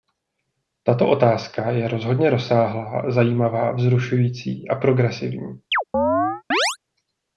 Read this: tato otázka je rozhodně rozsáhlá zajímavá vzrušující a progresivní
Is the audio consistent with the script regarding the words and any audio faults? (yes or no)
no